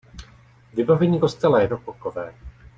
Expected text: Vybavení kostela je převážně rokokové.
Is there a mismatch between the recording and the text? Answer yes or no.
yes